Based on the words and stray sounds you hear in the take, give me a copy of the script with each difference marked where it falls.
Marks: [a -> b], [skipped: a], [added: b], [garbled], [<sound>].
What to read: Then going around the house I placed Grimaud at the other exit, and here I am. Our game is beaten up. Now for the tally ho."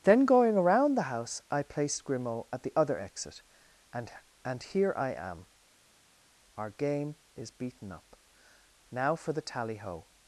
Then going around the house I placed Grimaud at the other exit, and [added: and] here I am. Our game is beaten up. Now for the tally ho."